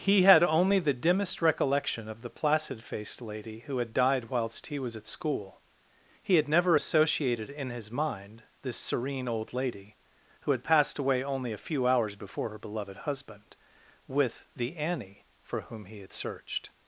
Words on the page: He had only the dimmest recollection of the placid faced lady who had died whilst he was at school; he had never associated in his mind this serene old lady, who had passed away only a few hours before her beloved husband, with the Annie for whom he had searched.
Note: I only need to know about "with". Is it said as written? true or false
true